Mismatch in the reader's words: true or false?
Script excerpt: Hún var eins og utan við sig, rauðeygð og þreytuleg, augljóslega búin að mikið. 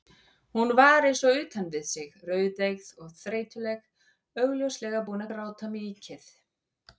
true